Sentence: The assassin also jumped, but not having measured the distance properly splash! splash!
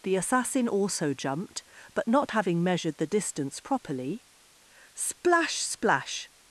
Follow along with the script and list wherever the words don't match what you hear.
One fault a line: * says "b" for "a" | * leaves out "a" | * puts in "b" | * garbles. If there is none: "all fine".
all fine